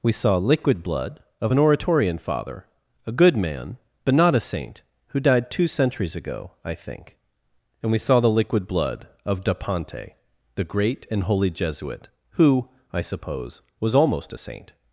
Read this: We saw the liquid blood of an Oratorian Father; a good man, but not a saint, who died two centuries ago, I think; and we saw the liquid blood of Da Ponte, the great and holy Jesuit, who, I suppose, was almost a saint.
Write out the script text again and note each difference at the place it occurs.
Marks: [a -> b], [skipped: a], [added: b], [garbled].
We saw [skipped: the] liquid blood of an Oratorian Father; a good man, but not a saint, who died two centuries ago, I think; and we saw the liquid blood of Da Ponte, the great and holy Jesuit, who, I suppose, was almost a saint.